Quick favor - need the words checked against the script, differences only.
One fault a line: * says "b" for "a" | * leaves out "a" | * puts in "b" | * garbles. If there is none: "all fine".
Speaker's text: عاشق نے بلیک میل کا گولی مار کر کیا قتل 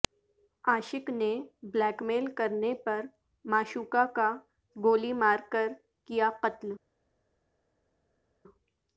* puts in "کرنے پر معشوقہ"